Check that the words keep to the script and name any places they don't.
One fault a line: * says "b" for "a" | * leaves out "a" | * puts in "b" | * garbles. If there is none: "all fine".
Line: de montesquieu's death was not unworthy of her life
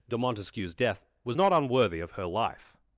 all fine